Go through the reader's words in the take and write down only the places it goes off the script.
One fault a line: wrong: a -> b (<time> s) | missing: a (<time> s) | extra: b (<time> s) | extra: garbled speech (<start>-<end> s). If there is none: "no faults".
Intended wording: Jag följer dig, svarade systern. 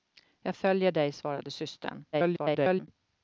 extra: garbled speech (2.1-2.9 s)